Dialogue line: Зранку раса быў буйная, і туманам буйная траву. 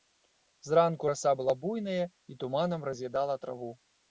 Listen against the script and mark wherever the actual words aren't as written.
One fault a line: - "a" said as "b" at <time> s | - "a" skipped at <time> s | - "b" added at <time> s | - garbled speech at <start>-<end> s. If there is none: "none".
- "быў" said as "была" at 1.4 s
- "буйная" said as "раз'ядала" at 2.9 s